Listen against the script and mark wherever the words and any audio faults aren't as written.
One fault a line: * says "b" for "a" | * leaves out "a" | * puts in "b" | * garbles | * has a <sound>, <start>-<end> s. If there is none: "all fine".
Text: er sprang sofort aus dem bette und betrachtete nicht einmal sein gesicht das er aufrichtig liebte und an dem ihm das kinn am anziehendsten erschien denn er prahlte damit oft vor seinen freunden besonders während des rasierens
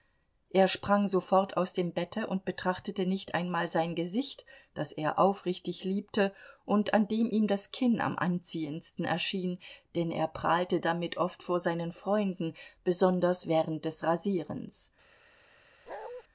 * has a bark, 15.9-16.2 s